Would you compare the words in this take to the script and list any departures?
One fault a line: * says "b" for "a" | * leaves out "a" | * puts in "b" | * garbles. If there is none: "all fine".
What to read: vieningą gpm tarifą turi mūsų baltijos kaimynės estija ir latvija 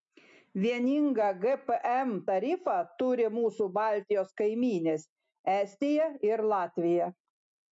all fine